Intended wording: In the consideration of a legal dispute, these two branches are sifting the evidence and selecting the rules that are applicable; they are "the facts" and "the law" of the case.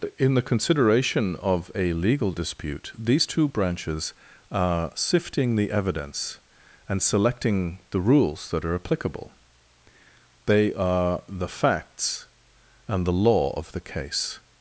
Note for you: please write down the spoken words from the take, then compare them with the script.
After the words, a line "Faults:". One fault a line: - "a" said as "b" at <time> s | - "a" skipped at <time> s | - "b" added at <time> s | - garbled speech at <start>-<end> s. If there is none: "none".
In the consideration of a legal dispute, these two branches are sifting the evidence and selecting the rules that are applicable; they are "the facts" and "the law" of the case.
Faults:
none